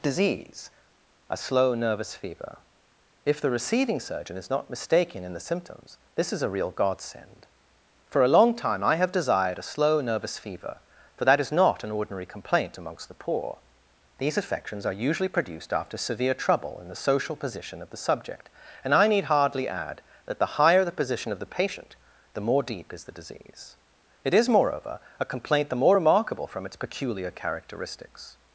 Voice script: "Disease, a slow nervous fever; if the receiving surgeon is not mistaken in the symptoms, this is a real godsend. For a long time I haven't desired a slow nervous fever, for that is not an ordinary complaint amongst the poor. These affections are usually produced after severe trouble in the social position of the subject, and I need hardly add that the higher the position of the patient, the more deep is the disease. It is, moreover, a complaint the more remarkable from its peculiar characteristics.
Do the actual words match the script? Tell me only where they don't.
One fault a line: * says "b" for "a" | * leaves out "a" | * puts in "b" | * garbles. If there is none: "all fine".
* says "have" for "haven't"